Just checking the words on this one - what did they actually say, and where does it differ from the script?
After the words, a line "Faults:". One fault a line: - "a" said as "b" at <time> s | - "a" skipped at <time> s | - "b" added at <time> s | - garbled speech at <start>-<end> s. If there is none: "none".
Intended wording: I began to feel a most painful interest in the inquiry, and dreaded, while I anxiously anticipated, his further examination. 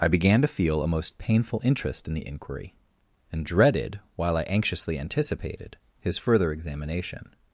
I began to feel a most painful interest in the inquiry, and dreaded, while I anxiously anticipated, his further examination.
Faults:
none